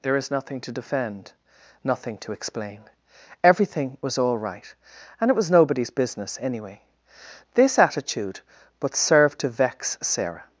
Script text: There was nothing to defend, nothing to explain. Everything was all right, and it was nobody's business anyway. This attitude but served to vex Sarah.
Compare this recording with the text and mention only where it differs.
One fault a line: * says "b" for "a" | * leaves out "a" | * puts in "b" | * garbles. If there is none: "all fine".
* says "is" for "was"